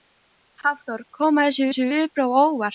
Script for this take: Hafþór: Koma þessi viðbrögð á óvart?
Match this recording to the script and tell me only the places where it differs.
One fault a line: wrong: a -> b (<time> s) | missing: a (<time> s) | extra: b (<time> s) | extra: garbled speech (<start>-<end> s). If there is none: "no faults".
extra: þessi (1.7 s)